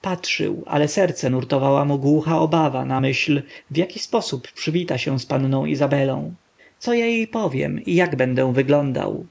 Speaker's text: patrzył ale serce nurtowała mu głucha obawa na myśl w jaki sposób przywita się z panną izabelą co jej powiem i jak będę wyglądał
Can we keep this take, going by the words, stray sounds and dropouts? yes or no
no